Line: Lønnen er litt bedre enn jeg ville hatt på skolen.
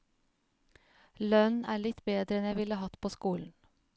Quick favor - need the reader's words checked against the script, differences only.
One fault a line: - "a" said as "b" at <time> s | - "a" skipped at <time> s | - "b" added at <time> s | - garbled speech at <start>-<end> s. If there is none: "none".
none